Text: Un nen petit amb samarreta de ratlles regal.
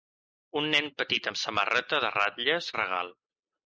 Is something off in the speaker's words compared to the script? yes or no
no